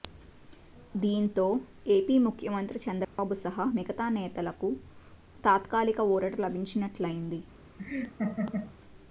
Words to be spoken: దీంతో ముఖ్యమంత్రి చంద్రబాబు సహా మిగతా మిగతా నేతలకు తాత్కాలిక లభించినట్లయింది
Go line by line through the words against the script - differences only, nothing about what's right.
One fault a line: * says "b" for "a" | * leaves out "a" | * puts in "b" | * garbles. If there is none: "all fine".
* puts in "ఏపీ"
* leaves out "మిగతా"
* puts in "ఊరట"